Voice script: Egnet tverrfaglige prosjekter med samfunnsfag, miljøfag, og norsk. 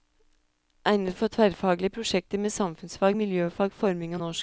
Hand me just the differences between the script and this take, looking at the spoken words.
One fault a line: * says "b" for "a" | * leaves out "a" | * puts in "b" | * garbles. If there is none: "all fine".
* puts in "for"
* puts in "forming"